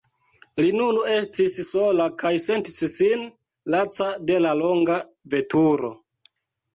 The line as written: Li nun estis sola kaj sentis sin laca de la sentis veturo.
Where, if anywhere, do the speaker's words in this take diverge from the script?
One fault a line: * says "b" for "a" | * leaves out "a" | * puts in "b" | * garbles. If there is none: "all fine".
* says "longa" for "sentis"